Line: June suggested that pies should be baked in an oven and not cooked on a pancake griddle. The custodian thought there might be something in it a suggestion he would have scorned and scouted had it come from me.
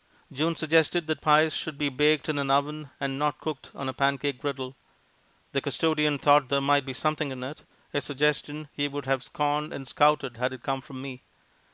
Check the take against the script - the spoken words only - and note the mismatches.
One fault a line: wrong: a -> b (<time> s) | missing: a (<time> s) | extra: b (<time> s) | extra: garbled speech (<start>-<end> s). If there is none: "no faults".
no faults